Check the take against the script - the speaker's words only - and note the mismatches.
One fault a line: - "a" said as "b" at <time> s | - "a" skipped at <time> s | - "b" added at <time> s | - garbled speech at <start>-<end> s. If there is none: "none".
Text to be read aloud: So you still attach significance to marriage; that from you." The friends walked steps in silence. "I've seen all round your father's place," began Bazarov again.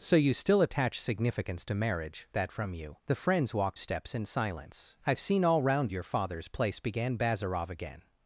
none